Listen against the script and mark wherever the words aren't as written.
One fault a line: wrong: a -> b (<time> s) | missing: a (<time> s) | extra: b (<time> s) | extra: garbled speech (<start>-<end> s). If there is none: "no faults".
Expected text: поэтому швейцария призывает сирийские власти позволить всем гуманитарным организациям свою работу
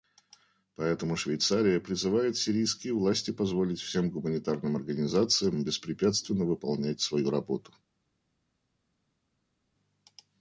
extra: беспрепятственно выполнять (5.6 s)